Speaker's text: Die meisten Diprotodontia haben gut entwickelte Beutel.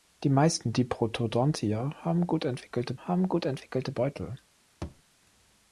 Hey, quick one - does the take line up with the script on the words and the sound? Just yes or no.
no